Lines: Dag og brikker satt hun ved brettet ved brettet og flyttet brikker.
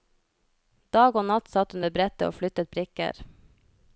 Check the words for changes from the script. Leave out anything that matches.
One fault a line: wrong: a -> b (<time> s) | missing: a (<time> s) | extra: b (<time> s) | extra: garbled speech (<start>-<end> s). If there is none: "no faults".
wrong: brikker -> natt (1.3 s)
missing: ved brettet (2.3 s)